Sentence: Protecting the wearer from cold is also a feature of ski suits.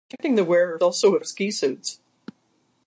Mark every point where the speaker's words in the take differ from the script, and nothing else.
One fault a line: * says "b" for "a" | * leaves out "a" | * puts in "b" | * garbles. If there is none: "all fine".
* leaves out "from cold is"
* leaves out "feature"